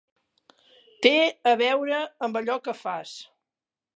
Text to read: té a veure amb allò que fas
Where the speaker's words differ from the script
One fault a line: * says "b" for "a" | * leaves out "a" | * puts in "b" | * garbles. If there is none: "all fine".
all fine